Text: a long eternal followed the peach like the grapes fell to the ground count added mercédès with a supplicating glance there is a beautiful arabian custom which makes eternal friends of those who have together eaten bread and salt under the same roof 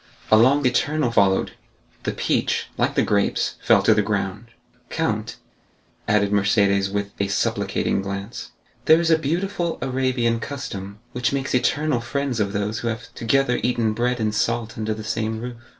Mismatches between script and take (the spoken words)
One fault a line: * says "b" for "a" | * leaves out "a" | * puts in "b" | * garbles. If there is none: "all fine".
all fine